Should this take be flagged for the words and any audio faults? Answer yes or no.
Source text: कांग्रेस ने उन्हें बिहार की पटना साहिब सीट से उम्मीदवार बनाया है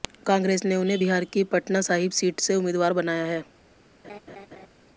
yes